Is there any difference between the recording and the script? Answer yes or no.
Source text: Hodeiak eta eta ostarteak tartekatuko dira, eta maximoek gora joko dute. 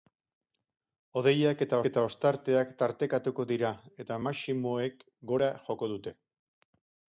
no